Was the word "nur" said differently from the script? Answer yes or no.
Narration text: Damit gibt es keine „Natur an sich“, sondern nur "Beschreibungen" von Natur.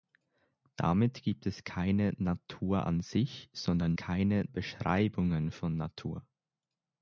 yes